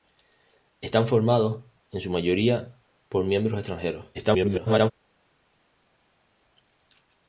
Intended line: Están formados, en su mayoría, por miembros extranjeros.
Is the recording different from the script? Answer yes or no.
yes